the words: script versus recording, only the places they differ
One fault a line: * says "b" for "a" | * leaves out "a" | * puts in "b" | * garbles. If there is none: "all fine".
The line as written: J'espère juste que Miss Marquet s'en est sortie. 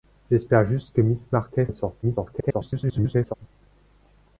* leaves out "s'en"
* garbles